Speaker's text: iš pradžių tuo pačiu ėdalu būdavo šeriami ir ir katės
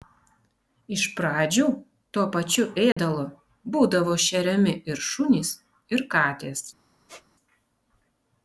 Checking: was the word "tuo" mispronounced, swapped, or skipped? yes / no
no